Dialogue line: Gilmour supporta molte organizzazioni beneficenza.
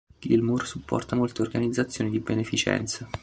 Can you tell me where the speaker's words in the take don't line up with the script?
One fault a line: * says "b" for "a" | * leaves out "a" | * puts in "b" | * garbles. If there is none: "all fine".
* puts in "di"